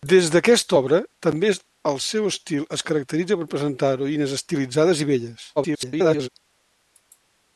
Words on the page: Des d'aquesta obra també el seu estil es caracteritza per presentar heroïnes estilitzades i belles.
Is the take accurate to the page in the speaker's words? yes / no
no